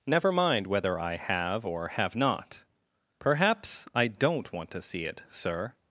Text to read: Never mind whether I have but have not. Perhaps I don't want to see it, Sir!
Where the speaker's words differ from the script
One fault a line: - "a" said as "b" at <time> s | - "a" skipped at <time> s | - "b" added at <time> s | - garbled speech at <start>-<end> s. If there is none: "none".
- "but" said as "or" at 1.6 s